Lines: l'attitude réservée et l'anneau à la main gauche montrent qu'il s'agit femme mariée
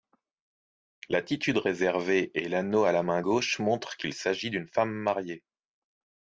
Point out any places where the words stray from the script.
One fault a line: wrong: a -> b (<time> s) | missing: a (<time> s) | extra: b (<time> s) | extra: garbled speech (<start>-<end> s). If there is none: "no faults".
extra: d'une (4.5 s)